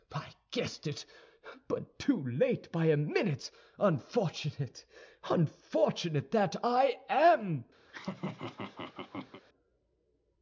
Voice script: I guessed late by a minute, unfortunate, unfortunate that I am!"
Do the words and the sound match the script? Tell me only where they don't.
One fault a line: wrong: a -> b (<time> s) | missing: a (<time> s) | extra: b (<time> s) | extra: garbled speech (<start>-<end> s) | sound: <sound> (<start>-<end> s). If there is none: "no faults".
extra: it But too (0.9 s)
sound: laugh (7.9-9.4 s)